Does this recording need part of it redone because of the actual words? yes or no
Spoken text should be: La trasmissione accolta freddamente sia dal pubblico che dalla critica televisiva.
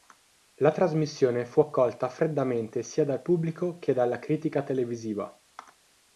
yes